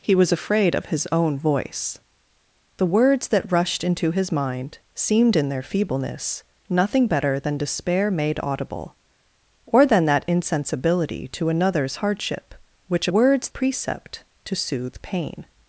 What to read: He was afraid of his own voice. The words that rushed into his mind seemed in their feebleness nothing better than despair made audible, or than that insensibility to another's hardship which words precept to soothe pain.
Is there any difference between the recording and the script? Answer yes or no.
no